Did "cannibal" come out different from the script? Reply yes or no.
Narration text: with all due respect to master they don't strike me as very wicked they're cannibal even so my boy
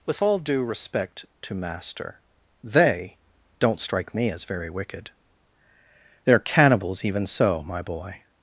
yes